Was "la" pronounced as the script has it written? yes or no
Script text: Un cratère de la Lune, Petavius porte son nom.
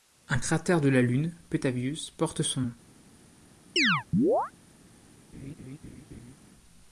yes